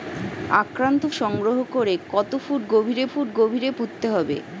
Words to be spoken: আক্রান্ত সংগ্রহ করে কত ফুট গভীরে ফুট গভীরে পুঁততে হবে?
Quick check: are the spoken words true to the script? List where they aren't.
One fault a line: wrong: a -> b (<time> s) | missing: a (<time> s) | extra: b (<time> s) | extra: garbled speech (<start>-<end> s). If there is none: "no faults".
no faults